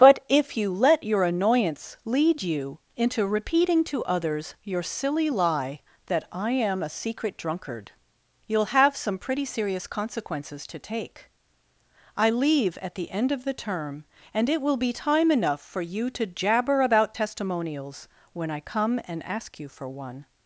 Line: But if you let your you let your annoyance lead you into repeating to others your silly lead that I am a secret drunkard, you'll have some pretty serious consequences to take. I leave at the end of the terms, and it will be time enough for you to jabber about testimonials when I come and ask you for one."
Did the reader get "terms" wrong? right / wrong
wrong